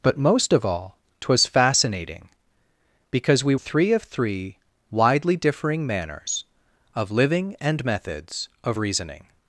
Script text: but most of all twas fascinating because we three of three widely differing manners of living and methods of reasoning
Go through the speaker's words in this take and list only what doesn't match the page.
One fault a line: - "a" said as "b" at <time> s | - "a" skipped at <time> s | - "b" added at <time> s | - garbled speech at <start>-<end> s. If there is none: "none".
none